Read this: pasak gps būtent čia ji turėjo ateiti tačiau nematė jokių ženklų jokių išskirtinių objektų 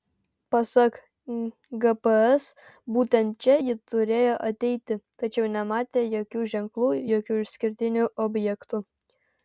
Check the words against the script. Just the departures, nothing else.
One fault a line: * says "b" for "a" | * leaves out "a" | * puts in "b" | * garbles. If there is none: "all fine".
all fine